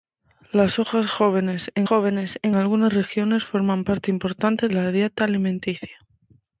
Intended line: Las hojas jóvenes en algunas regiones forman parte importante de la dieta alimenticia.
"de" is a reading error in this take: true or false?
true